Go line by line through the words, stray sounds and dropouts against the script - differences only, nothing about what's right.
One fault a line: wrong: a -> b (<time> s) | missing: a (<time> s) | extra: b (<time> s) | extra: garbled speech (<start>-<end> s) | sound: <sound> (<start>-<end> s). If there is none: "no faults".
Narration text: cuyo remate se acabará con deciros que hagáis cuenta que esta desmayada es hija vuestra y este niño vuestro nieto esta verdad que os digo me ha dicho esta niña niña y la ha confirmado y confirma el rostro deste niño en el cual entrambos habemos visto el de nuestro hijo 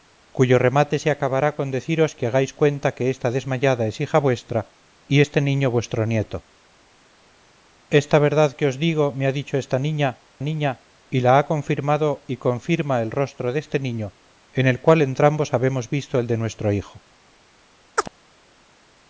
sound: chirp (18.0-18.1 s)